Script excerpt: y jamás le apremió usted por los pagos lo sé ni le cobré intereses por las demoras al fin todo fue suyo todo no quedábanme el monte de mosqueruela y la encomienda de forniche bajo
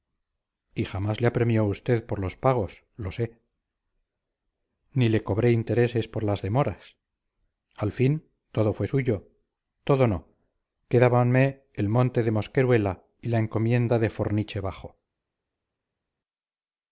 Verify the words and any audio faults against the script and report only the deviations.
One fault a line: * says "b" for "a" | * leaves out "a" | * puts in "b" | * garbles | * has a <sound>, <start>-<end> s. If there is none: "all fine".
all fine